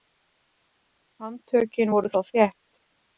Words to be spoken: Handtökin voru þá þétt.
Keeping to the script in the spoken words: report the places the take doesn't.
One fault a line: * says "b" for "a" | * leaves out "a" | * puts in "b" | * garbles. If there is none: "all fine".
all fine